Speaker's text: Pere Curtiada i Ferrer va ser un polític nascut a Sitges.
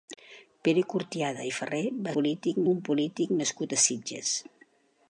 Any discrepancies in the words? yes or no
yes